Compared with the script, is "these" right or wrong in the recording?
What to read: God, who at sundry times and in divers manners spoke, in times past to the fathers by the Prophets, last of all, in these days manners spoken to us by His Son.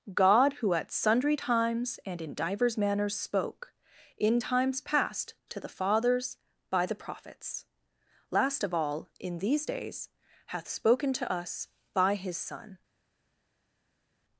right